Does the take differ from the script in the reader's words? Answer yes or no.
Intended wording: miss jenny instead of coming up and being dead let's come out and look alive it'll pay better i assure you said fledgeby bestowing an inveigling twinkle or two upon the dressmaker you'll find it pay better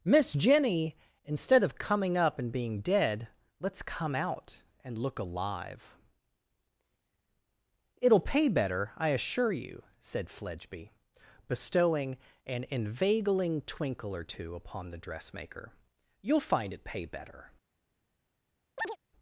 no